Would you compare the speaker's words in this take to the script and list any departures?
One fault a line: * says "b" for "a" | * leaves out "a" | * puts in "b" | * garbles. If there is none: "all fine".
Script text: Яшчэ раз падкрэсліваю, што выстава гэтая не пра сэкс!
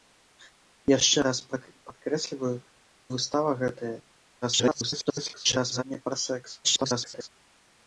* leaves out "што"
* garbles
* garbles